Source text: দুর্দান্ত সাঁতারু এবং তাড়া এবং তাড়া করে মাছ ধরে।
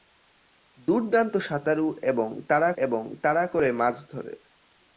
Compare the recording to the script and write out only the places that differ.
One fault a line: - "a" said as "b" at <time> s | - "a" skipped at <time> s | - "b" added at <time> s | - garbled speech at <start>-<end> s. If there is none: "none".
none